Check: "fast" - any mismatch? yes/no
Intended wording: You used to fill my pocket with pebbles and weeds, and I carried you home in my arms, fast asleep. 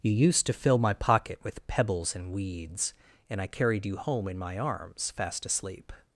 no